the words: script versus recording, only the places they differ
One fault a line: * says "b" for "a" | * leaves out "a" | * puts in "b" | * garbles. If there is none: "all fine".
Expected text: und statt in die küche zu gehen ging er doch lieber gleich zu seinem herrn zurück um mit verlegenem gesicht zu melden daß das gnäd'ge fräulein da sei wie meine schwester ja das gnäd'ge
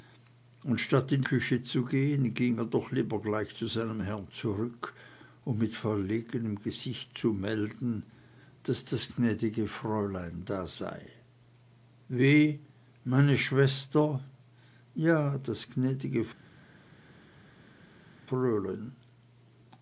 * leaves out "die"